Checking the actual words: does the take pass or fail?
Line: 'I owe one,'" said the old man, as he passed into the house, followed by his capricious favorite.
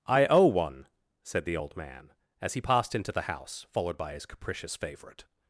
pass